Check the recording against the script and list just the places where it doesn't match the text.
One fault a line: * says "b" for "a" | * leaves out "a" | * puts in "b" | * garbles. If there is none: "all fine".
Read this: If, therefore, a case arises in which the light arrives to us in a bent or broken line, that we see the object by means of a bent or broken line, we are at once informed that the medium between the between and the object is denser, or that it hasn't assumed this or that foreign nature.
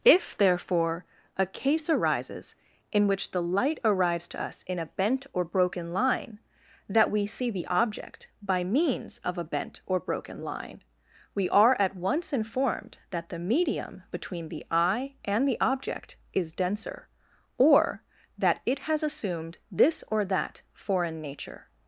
* says "eye" for "between"
* says "has" for "hasn't"